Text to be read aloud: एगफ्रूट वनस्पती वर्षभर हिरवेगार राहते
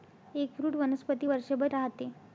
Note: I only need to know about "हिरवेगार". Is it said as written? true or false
false